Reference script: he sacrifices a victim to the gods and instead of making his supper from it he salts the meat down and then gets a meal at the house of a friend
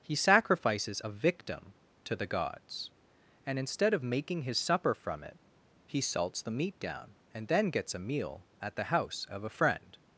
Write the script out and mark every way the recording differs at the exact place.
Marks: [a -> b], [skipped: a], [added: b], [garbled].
he sacrifices a victim to the gods and instead of making his supper from it he salts the meat down and then gets a meal at the house of a friend